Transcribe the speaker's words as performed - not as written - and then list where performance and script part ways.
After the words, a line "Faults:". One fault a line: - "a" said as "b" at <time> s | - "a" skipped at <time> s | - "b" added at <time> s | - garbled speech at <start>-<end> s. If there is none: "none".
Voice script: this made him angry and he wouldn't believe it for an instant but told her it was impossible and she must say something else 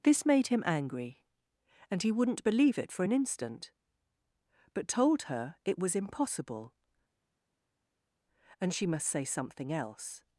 this made him angry and he wouldn't believe it for an instant but told her it was impossible and she must say something else
Faults:
none